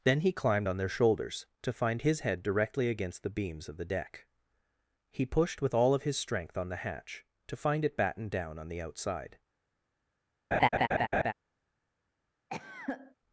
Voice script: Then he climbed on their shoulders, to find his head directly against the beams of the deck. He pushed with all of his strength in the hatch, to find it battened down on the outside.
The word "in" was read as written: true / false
false